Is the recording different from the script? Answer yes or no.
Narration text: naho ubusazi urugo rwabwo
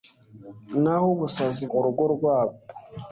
no